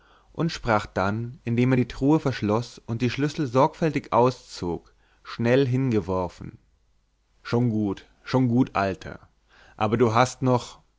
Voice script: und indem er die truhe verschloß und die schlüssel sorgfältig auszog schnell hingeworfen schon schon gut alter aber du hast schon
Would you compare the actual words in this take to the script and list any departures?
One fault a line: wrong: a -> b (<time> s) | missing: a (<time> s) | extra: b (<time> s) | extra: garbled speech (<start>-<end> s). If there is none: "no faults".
extra: sprach dann (0.5 s)
extra: gut (7.7 s)
wrong: schon -> noch (10.4 s)